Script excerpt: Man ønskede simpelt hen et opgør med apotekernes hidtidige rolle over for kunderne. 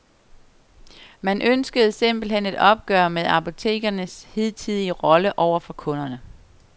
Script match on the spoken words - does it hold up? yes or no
yes